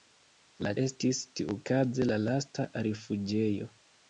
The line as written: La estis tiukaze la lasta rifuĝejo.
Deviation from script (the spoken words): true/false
false